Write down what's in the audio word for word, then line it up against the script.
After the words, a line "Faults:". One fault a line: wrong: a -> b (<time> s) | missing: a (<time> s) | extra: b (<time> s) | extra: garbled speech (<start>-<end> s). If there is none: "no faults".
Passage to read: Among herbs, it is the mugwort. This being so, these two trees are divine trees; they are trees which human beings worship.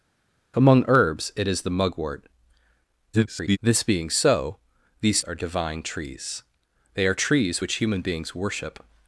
Among herbs, it is the mugwort. [garbled] This being so, these are divine trees; they are trees which human beings worship.
Faults:
extra: garbled speech (3.1-3.6 s)
missing: two trees (5.2 s)